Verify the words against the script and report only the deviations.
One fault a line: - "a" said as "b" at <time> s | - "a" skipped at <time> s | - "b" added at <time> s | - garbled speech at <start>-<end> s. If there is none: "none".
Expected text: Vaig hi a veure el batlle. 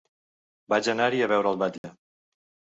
- "anar" added at 0.9 s